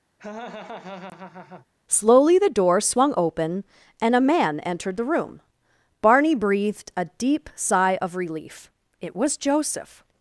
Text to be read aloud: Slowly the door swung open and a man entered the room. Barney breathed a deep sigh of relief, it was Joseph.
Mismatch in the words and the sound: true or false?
true